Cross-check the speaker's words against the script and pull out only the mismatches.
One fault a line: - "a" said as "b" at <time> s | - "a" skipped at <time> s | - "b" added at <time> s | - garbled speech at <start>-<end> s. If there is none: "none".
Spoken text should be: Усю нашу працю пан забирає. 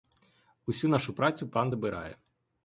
none